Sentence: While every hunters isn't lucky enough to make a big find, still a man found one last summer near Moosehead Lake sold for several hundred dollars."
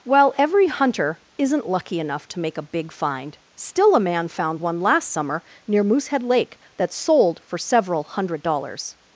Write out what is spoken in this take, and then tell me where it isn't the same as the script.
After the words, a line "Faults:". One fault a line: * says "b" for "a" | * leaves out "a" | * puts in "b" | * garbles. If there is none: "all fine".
While every hunter isn't lucky enough to make a big find, still a man found one last summer near Moosehead Lake that sold for several hundred dollars."
Faults:
* says "hunter" for "hunters"
* puts in "that"